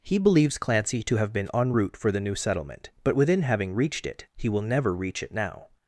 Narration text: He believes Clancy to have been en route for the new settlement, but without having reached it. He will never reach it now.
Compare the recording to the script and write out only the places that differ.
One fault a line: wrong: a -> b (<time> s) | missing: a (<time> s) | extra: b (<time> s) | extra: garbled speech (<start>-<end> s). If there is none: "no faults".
wrong: without -> within (3.1 s)